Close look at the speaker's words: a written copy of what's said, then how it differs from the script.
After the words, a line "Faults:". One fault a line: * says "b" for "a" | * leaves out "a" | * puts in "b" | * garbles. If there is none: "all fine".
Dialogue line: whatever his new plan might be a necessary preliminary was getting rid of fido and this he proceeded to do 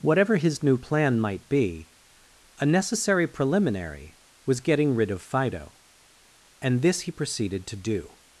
whatever his new plan might be a necessary preliminary was getting rid of fido and this he proceeded to do
Faults:
all fine